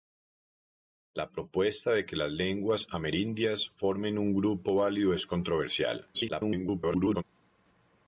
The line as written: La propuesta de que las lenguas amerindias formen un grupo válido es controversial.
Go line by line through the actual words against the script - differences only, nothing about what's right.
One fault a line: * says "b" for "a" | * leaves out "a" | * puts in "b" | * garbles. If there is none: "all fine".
* garbles